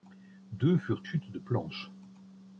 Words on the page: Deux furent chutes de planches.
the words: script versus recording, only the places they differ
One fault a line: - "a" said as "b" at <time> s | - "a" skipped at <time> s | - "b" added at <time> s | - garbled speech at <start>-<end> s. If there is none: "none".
none